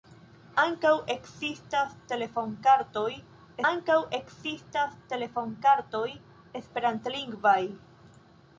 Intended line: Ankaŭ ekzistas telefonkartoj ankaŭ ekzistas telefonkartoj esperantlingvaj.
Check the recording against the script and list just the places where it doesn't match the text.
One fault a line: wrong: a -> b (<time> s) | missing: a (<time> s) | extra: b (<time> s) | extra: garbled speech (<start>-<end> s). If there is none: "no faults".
no faults